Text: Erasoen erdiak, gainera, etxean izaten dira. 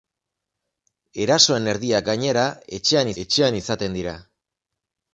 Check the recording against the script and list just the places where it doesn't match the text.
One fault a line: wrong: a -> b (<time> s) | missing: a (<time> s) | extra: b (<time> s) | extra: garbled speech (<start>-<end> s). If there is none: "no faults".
extra: etxean (3.2 s)